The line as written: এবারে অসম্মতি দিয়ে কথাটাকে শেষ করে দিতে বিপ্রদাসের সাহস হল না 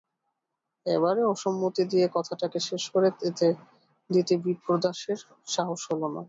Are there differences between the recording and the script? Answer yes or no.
no